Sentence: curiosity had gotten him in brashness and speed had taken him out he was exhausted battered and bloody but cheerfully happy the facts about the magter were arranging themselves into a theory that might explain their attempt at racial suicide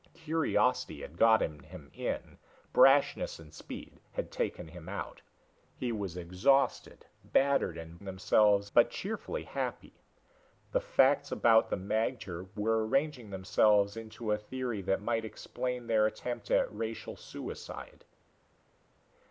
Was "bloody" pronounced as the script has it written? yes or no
no